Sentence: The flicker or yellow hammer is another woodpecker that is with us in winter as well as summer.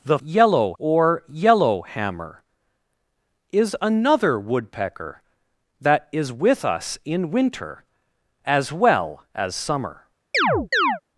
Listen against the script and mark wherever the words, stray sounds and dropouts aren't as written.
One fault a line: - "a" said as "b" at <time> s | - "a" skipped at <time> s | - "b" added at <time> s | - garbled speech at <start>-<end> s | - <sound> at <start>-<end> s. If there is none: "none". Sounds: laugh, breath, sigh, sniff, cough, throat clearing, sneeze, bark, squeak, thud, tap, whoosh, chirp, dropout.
- "flicker" said as "yellow" at 0.2 s
- chirp at 10.3-11.0 s